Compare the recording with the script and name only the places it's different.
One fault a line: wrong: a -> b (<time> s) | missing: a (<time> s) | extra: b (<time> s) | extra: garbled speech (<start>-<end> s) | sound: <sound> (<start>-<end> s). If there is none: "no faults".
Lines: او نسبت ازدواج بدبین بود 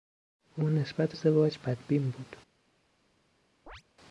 sound: chirp (3.7-3.8 s)